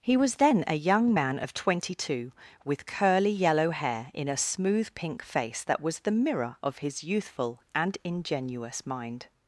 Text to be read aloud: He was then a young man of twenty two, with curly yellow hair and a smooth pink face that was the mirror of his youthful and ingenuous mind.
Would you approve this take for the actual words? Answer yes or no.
no